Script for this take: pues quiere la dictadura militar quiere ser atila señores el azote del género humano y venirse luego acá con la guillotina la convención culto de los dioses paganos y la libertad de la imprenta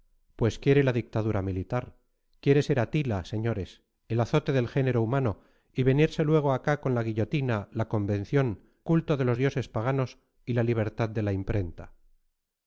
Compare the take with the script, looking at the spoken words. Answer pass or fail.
pass